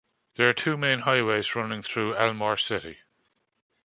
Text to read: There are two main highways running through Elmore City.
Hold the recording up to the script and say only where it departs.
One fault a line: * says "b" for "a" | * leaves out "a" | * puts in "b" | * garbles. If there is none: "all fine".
all fine